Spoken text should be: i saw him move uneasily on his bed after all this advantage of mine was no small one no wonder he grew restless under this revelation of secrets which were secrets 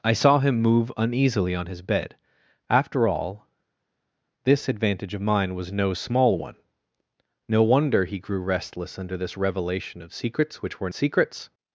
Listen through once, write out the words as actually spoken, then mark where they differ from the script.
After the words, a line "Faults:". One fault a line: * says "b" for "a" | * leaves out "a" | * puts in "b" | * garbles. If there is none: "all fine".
i saw him move uneasily on his bed after all this advantage of mine was no small one no wonder he grew restless under this revelation of secrets which were secrets
Faults:
all fine